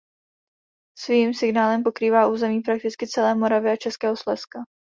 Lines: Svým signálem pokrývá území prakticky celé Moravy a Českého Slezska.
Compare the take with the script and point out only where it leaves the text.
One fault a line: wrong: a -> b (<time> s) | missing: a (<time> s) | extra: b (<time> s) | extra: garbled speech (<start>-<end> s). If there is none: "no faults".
no faults